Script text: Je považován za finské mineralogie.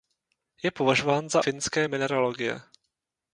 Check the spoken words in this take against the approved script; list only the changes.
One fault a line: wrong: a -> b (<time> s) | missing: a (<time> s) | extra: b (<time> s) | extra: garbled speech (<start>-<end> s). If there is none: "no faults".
no faults